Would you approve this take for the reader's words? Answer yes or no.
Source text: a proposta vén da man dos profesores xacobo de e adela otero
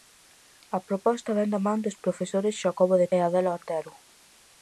yes